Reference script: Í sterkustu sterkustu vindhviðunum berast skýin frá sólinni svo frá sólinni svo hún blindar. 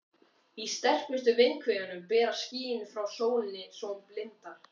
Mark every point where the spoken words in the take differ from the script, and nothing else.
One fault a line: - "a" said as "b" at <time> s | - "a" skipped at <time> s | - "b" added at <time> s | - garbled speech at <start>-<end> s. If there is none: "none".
- "sterkustu" skipped at 1.3 s
- "frá sólinni svo" skipped at 3.9 s